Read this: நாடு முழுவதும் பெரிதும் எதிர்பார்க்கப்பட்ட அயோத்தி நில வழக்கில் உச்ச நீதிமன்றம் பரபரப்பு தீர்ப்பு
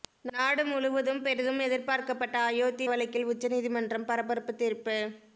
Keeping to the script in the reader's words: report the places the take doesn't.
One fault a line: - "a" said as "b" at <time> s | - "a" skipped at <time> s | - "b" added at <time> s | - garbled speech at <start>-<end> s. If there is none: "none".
- "நில" skipped at 2.9 s